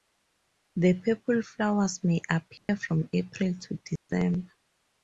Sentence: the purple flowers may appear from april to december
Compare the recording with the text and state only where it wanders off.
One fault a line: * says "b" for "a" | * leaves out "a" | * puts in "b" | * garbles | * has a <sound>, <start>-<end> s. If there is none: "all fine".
* has a dropout, 2.6-2.7 s
* has a dropout, 4.0-4.1 s